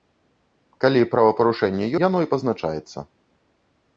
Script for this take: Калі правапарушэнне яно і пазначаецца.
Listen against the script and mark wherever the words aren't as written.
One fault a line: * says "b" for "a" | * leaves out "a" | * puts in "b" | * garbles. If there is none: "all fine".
all fine